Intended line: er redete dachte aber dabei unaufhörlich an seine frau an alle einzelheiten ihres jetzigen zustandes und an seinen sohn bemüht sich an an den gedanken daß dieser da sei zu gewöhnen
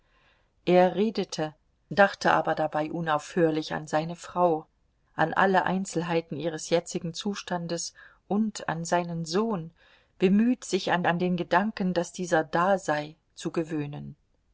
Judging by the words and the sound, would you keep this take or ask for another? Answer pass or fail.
pass